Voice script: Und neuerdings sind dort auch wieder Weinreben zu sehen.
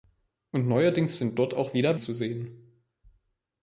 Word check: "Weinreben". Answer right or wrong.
wrong